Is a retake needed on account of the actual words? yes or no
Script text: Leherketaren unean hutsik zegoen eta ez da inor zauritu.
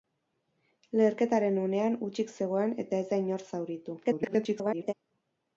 yes